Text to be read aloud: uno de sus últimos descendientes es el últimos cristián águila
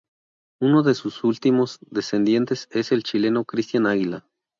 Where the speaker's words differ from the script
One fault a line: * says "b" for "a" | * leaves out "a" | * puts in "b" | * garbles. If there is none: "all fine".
* says "chileno" for "últimos"